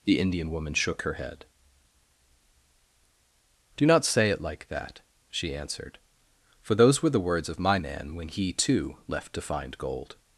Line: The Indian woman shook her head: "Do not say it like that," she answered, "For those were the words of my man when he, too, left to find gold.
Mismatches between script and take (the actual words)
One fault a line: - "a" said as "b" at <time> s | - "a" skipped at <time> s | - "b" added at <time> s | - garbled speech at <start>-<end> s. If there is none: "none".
none